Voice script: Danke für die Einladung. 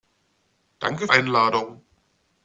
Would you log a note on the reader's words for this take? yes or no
yes